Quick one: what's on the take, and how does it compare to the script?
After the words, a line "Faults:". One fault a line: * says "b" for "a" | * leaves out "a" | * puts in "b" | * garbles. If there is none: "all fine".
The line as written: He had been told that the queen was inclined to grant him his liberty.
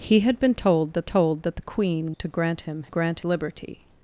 He had been told that told that the queen to grant him grant liberty.
Faults:
* puts in "told that"
* leaves out "was inclined"
* says "grant" for "his"